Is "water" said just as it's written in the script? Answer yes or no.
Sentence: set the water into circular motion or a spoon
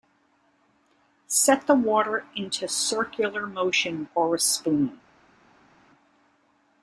yes